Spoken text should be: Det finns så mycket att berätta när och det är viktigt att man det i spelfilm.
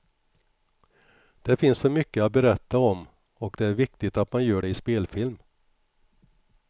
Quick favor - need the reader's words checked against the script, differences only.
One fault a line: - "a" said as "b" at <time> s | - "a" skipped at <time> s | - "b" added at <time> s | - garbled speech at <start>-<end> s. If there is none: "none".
- "när" said as "om" at 2.8 s
- "gör" added at 4.5 s